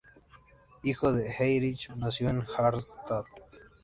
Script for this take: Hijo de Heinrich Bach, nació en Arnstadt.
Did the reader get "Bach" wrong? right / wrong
wrong